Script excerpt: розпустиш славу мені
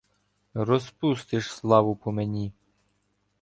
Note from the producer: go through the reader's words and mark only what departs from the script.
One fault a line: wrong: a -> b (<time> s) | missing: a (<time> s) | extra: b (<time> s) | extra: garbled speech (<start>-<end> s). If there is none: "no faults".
extra: по (1.9 s)